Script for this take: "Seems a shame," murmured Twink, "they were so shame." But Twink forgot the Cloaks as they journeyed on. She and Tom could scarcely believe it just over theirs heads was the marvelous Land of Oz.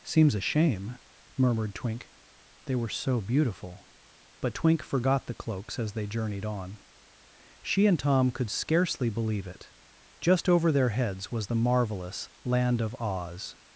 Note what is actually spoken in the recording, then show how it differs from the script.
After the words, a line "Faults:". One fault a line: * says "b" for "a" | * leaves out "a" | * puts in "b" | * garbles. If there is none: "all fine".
"Seems a shame," murmured Twink, "they were so beautiful." But Twink forgot the Cloaks as they journeyed on. She and Tom could scarcely believe it just over their heads was the marvelous Land of Oz.
Faults:
* says "beautiful" for "shame"
* says "their" for "theirs"